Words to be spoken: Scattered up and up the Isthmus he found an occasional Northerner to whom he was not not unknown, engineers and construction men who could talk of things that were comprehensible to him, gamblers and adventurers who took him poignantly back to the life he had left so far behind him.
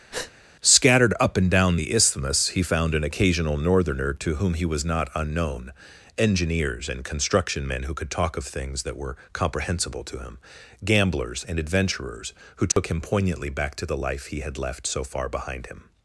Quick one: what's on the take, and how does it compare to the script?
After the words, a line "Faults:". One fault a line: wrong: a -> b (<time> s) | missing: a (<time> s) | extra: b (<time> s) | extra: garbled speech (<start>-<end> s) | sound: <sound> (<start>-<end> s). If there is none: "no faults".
Scattered up and down the Isthmus he found an occasional Northerner to whom he was not unknown, engineers and construction men who could talk of things that were comprehensible to him, gamblers and adventurers who took him poignantly back to the life he had left so far behind him.
Faults:
sound: breath (0.1-0.3 s)
wrong: up -> down (1.5 s)
missing: not (5.1 s)
sound: dropout (12.7-12.8 s)